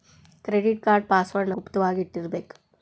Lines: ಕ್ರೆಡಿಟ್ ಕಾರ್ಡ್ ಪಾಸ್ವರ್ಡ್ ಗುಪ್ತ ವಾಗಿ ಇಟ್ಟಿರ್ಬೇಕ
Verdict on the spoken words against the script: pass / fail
pass